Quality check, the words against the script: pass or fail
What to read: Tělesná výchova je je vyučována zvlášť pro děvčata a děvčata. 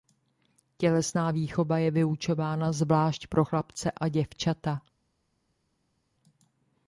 fail